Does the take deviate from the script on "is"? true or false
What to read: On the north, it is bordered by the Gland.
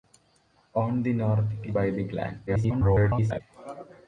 true